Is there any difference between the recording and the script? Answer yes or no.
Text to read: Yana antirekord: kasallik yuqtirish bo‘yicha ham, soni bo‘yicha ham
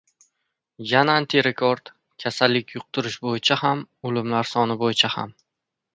yes